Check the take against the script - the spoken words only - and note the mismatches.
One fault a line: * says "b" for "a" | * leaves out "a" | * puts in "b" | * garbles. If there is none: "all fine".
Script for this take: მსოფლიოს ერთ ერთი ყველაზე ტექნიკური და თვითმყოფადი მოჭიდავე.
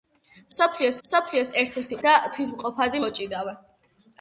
* puts in "მსოფლიოს"
* leaves out "ყველაზე ტექნიკური"